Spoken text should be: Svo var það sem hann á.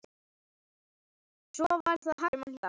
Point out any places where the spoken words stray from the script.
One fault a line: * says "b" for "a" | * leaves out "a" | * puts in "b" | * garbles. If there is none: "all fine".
all fine